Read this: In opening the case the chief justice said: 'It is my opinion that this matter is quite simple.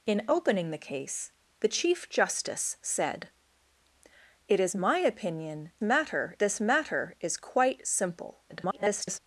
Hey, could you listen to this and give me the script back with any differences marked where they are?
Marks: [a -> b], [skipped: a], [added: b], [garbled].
In opening the case the chief justice said: 'It is my opinion [that -> matter] this matter is quite simple. [garbled]